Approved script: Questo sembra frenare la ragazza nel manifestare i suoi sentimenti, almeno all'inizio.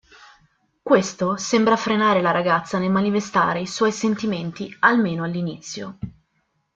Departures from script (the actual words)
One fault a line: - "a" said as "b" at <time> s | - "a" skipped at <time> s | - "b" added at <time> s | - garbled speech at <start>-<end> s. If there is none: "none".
none